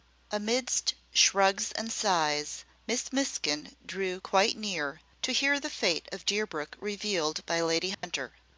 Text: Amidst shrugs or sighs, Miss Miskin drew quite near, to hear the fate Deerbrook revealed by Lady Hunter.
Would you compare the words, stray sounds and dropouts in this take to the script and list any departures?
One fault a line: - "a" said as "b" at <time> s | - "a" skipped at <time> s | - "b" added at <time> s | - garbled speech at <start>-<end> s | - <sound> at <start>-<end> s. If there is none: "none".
- "or" said as "and" at 1.7 s
- "of" added at 6.1 s
- dropout at 7.9-8.0 s